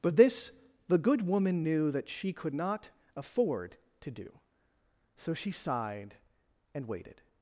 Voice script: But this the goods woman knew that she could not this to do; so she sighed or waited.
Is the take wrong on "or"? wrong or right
wrong